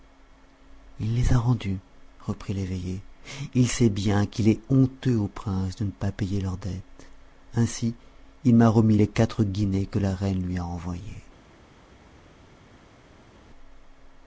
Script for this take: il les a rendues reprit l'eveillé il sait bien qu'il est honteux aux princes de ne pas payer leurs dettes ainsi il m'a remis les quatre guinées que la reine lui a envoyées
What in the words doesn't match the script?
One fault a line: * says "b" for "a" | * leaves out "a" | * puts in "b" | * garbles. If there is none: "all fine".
all fine